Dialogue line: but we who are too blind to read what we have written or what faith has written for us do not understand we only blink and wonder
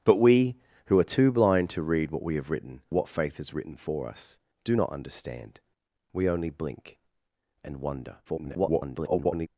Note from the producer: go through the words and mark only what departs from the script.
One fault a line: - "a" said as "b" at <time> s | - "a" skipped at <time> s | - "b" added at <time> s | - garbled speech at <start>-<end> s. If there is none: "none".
- "or" skipped at 2.8 s
- garbled speech at 8.2-9.5 s